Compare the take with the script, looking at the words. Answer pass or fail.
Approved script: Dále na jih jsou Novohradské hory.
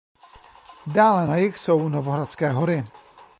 pass